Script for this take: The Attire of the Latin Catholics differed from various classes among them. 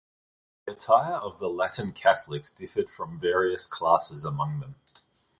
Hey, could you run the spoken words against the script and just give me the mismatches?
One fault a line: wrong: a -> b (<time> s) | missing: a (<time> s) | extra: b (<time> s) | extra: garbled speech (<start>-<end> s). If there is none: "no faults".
no faults